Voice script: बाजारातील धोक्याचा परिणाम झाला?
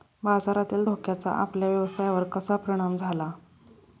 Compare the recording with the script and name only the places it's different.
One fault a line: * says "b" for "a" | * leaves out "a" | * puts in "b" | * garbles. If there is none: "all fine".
* puts in "आपल्या व्यवसायावर कसा"